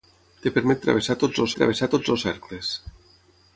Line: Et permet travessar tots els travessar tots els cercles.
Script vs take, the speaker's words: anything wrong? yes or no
no